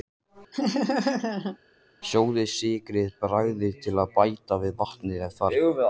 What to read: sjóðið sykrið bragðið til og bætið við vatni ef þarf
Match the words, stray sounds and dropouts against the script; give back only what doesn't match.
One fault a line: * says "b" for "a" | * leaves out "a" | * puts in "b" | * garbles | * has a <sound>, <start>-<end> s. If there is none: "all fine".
* has a laugh, 0.5-1.6 s